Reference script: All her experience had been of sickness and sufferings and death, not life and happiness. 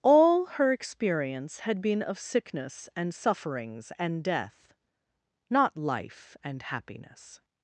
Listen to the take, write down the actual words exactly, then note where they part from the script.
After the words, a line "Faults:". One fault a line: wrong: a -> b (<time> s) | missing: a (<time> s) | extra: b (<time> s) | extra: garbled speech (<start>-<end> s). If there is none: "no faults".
All her experience had been of sickness and sufferings and death, not life and happiness.
Faults:
no faults